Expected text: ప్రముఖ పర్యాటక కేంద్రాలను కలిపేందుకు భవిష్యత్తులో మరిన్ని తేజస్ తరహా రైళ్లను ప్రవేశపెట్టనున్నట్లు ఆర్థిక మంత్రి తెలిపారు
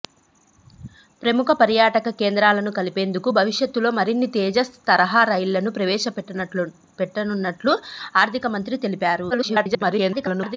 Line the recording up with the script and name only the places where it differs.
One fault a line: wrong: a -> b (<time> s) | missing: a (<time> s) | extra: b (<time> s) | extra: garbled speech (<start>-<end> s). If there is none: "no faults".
extra: garbled speech (9.3-10.6 s)